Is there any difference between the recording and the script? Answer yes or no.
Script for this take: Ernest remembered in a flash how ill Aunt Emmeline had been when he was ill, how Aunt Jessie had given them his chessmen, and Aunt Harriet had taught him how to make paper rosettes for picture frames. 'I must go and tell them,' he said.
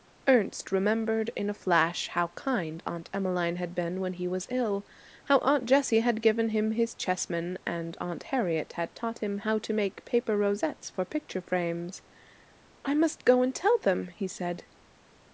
yes